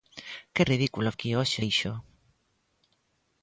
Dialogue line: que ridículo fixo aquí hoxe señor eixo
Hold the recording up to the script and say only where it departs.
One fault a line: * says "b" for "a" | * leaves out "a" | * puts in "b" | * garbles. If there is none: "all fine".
* leaves out "fixo"
* leaves out "señor"